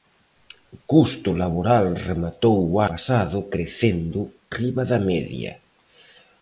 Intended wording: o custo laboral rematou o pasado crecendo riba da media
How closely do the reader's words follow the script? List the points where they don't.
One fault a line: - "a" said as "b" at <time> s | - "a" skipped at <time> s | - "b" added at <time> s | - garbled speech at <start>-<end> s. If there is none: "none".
none